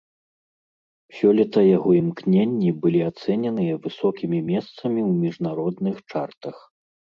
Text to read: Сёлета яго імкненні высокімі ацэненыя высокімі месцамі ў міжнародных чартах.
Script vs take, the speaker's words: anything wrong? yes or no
yes